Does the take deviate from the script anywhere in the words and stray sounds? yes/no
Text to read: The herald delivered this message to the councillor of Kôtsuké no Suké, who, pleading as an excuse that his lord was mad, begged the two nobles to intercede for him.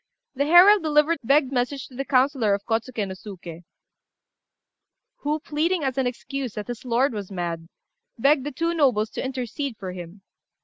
yes